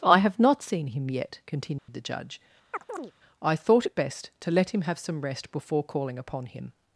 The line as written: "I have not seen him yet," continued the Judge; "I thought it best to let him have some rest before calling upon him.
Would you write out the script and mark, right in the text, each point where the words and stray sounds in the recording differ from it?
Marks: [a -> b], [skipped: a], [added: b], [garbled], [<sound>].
"I have not seen him yet," continued [dropout] the Judge; [chirp] "I thought it best to let him have some rest before calling upon him.